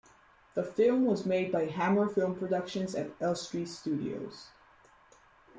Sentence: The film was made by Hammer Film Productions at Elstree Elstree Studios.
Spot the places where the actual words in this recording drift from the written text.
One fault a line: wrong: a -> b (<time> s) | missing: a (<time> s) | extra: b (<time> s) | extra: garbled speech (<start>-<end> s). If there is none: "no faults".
missing: Elstree (3.7 s)